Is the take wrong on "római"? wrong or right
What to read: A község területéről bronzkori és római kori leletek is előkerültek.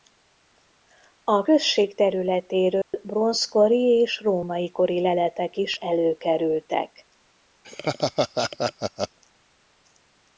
right